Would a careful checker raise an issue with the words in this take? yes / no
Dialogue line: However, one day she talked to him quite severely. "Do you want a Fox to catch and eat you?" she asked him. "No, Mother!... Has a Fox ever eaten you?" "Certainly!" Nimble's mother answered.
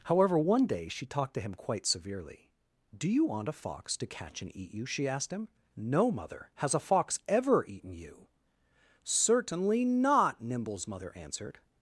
yes